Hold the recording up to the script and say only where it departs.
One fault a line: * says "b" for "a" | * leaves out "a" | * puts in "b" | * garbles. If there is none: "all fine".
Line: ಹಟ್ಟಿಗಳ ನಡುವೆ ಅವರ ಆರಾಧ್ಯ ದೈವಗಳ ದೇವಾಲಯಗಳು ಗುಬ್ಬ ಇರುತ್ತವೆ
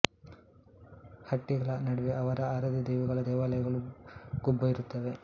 all fine